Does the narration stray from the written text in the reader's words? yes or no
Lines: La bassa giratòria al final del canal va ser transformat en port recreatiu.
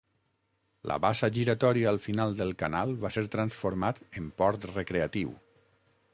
no